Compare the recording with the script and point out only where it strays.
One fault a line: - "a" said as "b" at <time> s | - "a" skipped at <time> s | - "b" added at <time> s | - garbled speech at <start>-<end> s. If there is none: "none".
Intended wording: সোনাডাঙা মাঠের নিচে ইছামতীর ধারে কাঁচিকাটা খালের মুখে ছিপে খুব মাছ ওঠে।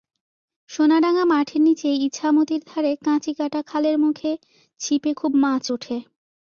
none